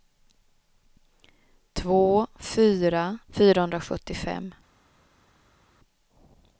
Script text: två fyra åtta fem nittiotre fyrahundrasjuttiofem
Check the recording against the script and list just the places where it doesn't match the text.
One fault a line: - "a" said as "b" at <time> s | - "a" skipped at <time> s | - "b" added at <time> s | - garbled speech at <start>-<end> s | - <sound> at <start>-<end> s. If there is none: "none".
- "åtta fem nittiotre" skipped at 3.2 s